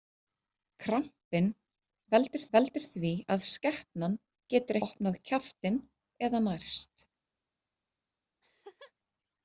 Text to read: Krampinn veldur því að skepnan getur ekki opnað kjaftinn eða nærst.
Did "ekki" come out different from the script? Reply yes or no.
yes